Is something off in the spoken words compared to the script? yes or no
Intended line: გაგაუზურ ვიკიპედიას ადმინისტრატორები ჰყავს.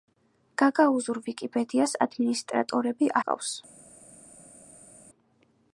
no